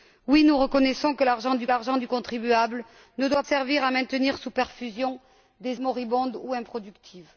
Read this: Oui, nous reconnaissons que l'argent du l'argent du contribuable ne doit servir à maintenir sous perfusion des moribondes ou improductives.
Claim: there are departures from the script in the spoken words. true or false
false